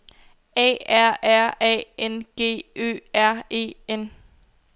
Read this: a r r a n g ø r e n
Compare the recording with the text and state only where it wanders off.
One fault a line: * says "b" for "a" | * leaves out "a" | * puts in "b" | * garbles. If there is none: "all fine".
all fine